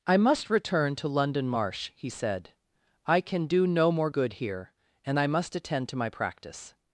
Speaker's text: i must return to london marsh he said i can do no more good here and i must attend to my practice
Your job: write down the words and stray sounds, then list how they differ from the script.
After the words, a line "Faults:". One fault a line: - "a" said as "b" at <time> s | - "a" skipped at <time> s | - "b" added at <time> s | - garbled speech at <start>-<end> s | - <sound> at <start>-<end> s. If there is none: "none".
i must return to london marsh he said i can do no more good here and i must attend to my practice
Faults:
none